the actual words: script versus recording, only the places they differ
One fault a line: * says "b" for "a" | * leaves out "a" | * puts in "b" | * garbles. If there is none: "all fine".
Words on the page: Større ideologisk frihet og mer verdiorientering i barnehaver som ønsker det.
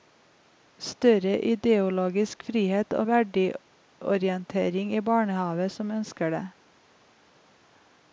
* leaves out "mer"